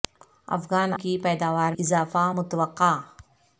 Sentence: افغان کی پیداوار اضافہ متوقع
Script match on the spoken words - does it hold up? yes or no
yes